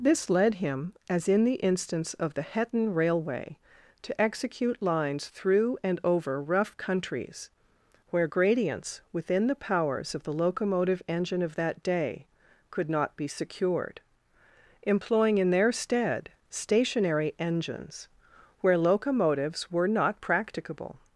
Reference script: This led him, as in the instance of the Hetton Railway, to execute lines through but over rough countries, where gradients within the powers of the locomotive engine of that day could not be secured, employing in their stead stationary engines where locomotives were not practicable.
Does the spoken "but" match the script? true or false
false